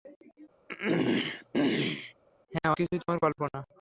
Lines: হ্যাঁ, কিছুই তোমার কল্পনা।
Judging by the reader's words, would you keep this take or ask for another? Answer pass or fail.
pass